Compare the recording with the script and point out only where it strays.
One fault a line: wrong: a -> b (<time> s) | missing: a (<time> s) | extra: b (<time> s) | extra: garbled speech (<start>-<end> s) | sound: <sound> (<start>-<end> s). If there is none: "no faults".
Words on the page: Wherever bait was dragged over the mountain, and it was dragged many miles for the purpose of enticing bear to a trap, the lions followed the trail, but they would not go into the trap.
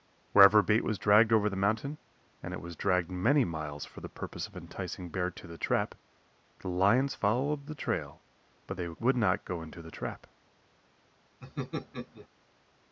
wrong: a -> the (5.5 s)
sound: laugh (11.4-12.3 s)